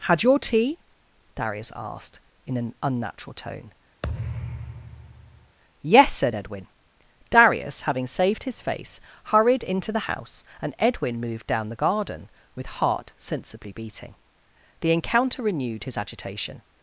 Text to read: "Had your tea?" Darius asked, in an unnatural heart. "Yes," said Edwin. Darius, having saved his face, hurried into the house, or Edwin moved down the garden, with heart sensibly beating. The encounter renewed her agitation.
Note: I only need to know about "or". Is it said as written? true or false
false